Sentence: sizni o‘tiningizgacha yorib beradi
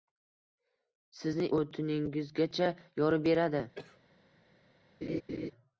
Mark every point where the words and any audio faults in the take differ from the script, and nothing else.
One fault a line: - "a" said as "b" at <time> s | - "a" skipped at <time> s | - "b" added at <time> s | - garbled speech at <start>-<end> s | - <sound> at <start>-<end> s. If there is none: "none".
- cough at 3.8-4.0 s
- laugh at 5.0-5.5 s